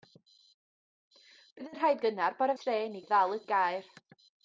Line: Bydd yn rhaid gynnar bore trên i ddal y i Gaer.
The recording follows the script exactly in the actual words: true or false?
true